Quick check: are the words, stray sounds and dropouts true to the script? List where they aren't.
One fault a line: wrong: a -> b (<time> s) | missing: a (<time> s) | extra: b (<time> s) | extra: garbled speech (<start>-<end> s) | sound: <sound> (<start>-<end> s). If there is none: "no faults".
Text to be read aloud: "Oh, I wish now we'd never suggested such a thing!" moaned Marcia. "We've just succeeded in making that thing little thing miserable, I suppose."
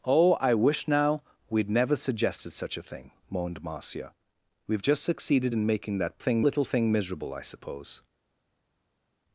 no faults